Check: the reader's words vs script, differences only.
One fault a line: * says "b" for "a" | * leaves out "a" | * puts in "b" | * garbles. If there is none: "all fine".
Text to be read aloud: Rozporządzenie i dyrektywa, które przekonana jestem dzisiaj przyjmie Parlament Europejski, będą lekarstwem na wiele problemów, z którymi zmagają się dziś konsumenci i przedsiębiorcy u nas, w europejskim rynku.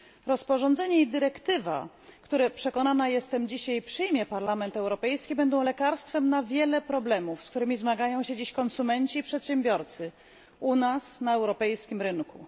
* says "na" for "w"